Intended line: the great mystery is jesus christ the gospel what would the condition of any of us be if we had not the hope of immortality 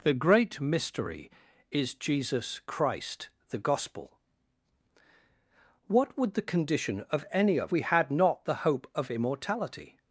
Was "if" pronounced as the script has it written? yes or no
no